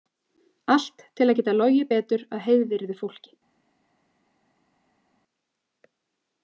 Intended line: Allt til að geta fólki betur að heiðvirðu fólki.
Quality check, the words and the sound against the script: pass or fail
fail